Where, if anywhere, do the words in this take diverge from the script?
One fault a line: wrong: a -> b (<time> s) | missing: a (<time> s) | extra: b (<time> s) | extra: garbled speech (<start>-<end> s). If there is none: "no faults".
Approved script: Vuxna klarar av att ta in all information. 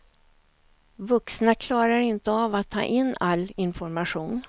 extra: inte (2.0 s)